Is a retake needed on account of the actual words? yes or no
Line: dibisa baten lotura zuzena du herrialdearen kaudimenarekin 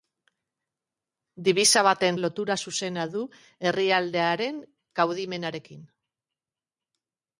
no